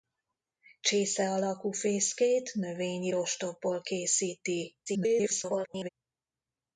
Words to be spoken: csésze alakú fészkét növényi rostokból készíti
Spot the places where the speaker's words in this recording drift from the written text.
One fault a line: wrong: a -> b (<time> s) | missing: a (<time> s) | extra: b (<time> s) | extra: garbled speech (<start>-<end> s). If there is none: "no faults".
extra: garbled speech (4.9-5.9 s)